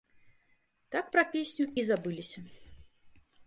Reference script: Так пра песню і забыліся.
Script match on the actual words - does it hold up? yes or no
yes